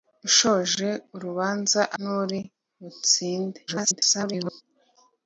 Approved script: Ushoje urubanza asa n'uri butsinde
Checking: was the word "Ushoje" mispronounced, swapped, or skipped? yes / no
no